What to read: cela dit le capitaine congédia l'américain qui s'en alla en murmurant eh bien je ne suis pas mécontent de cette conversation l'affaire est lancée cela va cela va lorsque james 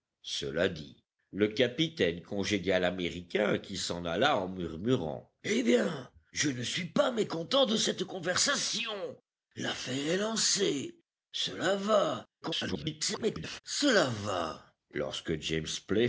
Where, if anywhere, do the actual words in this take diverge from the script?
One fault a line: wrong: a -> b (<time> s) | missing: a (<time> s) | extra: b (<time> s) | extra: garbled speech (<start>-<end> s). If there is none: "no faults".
extra: garbled speech (12.4-13.6 s)